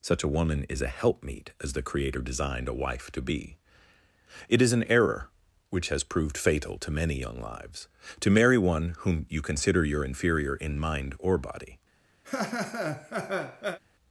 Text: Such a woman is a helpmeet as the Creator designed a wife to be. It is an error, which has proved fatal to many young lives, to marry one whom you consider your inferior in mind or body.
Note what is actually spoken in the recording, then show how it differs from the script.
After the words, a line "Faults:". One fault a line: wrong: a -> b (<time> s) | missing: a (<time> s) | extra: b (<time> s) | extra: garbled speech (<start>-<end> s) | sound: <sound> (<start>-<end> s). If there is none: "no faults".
Such a woman is a helpmeet as the Creator designed a wife to be. It is an error, which has proved fatal to many young lives, to marry one whom you consider your inferior in mind or body.
Faults:
sound: laugh (12.2-13.8 s)